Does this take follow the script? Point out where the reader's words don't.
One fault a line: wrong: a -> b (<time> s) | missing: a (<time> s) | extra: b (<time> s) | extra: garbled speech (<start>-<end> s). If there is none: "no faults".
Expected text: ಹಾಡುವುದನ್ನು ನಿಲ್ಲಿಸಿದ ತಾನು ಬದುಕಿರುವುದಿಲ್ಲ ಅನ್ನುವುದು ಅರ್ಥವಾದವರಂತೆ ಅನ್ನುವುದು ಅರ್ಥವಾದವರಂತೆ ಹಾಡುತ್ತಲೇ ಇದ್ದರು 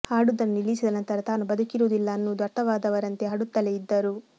extra: ನಂತರ (0.9 s)
missing: ಅನ್ನುವುದು ಅರ್ಥವಾದವರಂತೆ (3.3 s)